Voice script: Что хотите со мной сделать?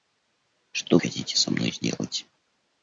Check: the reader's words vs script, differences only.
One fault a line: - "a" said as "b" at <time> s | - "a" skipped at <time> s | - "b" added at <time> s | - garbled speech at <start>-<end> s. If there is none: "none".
none